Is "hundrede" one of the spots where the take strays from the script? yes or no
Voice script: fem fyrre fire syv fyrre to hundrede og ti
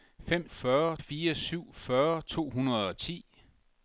no